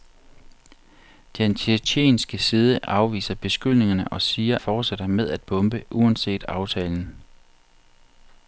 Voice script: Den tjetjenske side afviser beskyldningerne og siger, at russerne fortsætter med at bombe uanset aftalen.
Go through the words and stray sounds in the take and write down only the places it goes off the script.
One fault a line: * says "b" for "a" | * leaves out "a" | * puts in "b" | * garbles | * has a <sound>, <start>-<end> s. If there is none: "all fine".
* leaves out "at russerne"